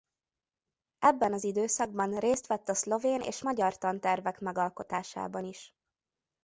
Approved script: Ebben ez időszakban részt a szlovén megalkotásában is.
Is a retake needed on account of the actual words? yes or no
yes